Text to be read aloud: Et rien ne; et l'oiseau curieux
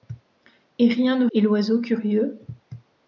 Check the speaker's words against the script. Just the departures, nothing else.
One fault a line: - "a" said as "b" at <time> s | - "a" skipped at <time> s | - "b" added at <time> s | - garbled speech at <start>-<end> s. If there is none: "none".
none